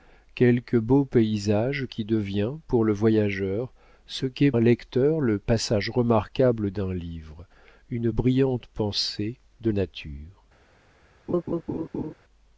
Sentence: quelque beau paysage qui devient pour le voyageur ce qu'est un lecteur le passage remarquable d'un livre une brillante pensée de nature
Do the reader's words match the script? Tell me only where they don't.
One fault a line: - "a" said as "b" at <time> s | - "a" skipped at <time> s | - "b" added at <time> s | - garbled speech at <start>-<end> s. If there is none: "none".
none